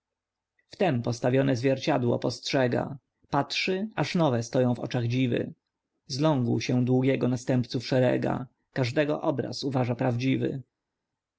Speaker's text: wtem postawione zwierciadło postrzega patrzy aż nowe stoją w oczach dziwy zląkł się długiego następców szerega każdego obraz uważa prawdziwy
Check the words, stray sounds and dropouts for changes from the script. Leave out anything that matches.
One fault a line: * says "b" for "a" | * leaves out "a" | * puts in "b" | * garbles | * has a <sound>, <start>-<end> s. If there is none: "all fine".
all fine